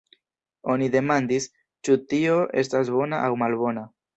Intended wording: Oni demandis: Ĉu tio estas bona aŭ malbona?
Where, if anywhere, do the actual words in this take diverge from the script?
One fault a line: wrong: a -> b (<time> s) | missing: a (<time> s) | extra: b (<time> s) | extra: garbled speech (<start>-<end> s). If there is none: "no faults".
no faults